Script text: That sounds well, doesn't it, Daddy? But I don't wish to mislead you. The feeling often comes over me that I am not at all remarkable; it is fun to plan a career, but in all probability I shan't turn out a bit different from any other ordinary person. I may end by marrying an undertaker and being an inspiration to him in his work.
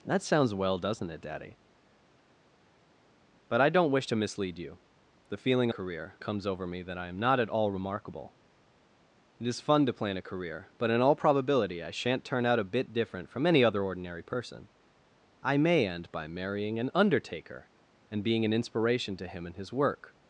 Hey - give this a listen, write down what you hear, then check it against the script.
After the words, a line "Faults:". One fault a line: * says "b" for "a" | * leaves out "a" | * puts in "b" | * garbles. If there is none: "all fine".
That sounds well, doesn't it, Daddy? But I don't wish to mislead you. The feeling career comes over me that I am not at all remarkable; it is fun to plan a career, but in all probability I shan't turn out a bit different from any other ordinary person. I may end by marrying an undertaker and being an inspiration to him in his work.
Faults:
* says "career" for "often"